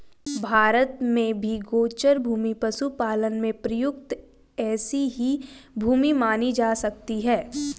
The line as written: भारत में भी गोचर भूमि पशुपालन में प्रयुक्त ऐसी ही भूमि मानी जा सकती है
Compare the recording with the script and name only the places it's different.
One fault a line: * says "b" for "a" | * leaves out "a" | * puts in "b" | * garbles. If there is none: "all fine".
all fine